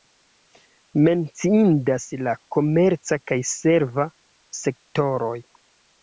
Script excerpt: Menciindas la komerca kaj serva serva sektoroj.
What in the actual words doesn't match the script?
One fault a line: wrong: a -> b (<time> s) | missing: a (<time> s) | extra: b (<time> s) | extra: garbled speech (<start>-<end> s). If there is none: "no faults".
missing: serva (4.1 s)